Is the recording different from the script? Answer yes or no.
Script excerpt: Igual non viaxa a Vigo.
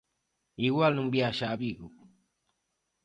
no